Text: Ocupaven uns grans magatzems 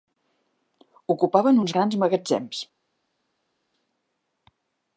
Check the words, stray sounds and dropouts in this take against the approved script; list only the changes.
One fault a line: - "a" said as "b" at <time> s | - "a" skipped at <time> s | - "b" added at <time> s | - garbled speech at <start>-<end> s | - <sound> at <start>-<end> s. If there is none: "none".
none